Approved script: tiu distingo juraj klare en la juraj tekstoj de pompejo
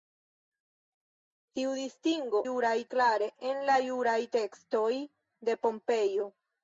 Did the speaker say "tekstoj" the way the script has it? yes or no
yes